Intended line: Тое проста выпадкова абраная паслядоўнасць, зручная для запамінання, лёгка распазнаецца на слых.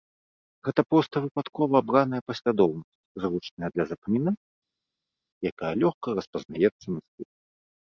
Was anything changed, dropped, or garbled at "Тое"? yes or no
yes